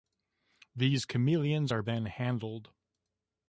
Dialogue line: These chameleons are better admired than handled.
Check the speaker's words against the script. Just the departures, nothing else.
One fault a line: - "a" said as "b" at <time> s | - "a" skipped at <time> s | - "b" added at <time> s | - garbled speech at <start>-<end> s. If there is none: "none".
- "better admired" skipped at 1.8 s